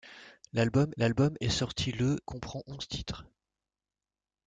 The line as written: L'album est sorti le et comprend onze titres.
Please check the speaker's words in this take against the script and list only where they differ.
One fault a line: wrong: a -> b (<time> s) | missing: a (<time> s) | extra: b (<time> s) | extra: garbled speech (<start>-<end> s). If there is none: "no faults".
extra: l'album (1.0 s)
missing: et (2.2 s)